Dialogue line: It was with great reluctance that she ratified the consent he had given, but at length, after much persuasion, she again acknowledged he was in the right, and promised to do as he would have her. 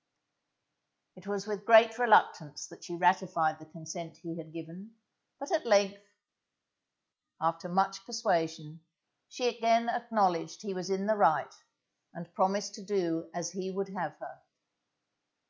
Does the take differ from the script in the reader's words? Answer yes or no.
no